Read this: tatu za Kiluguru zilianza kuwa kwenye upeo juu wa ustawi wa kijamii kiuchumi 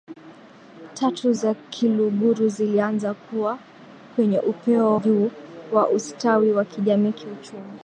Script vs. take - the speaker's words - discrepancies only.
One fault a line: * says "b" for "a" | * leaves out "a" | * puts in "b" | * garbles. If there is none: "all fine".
all fine